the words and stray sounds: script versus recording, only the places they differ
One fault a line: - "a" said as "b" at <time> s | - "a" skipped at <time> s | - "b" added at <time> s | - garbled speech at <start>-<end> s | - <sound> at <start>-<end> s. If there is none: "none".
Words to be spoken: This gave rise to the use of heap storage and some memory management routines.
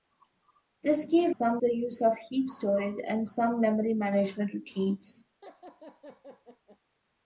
- "rise" said as "some" at 1.3 s
- laugh at 5.4-6.8 s